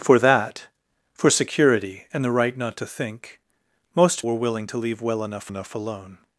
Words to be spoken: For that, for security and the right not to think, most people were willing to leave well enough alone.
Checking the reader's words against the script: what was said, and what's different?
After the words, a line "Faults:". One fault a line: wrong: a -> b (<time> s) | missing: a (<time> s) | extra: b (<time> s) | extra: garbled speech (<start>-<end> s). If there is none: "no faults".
For that, for security and the right not to think, most were willing to leave well enough enough alone.
Faults:
missing: people (4.2 s)
extra: enough (5.5 s)